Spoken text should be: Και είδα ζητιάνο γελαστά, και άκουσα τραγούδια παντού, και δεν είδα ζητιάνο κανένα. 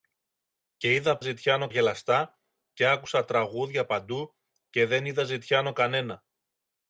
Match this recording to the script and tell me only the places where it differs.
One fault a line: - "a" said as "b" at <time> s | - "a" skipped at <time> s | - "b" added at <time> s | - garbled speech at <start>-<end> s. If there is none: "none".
none